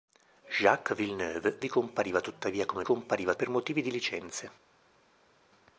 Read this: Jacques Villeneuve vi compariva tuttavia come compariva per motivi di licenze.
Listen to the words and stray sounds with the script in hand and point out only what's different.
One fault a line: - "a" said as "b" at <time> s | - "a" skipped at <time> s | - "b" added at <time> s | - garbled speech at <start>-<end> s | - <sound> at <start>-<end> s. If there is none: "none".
none